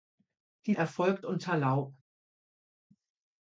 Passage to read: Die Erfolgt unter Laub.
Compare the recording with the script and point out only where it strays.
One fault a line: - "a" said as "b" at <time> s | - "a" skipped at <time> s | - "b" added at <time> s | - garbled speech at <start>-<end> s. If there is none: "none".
none